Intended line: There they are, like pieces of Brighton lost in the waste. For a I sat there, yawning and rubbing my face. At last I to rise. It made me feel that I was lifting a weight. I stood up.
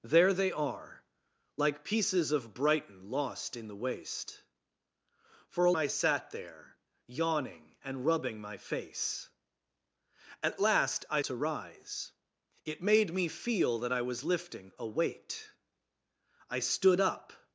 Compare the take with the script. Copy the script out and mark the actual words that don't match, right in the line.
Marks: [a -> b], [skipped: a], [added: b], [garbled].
There they are, like pieces of Brighton lost in the waste. For a I sat there, yawning and rubbing my face. At last I to rise. It made me feel that I was lifting a weight. I stood up.